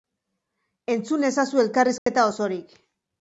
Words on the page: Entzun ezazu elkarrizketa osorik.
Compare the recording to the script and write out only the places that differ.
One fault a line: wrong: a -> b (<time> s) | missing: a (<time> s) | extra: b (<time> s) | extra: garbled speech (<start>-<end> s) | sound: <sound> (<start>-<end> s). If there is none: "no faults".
sound: dropout (2.0-2.1 s)